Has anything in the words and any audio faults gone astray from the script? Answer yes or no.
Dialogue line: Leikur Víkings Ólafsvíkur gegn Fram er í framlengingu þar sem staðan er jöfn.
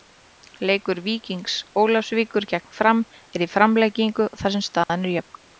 yes